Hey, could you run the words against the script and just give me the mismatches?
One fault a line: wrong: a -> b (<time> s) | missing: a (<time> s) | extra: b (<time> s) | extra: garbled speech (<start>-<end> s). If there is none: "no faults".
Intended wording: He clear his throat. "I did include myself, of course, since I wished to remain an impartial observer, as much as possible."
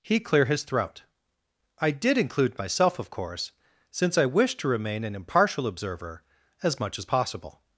no faults